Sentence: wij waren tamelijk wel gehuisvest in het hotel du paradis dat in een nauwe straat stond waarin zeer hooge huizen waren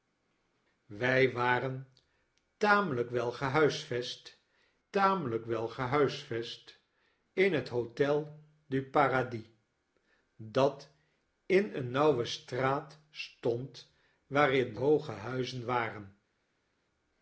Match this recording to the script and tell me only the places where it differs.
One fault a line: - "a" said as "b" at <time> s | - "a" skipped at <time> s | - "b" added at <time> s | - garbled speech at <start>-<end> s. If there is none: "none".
- "tamelijk wel gehuisvest" added at 4.9 s
- "zeer" skipped at 14.8 s